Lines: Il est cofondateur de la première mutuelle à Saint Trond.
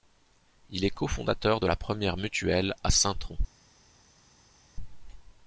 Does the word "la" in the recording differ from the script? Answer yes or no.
no